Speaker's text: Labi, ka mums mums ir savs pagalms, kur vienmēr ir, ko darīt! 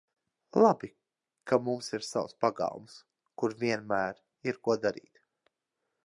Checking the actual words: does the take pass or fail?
fail